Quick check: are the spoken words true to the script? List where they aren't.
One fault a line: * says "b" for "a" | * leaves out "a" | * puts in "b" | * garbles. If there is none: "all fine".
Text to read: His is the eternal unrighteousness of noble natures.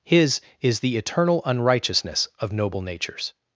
all fine